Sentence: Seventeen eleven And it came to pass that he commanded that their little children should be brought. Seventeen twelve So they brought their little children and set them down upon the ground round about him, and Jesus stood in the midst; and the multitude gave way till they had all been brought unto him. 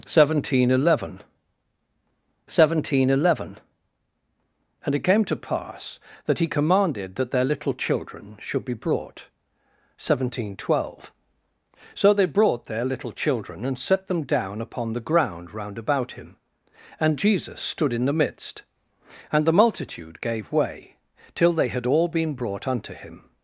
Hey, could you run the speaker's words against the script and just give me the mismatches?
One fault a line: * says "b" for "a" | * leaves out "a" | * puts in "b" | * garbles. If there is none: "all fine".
* puts in "seventeen eleven"